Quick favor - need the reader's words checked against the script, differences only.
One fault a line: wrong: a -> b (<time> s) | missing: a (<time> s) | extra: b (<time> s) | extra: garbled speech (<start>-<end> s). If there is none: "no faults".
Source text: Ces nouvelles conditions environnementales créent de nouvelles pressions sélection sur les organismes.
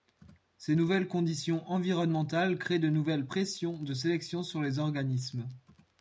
extra: de (3.7 s)